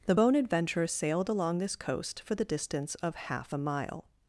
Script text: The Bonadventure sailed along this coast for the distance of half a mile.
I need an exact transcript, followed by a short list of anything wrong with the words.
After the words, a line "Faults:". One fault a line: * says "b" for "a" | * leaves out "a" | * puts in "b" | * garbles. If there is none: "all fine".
The Bonadventure sailed along this coast for the distance of half a mile.
Faults:
all fine